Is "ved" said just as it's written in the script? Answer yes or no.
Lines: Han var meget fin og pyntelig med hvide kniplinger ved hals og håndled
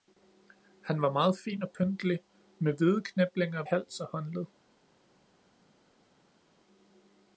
no